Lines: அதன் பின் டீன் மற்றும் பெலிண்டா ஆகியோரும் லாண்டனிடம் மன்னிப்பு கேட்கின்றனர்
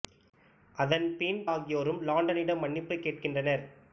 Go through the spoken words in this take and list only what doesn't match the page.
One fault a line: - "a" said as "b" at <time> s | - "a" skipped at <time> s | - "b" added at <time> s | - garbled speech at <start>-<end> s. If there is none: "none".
- "டீன் மற்றும் பெலிண்டா" skipped at 1.4 s